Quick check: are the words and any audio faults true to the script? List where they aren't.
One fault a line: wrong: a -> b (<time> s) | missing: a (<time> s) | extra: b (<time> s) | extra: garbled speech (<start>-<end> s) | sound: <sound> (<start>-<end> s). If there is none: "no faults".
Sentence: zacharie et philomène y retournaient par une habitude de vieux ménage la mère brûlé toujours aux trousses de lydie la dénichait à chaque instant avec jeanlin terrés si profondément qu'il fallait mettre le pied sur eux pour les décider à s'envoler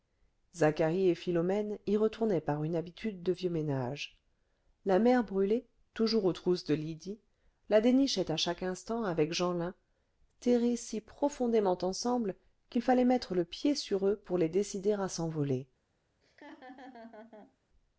extra: ensemble (11.8 s)
sound: laugh (16.2-17.6 s)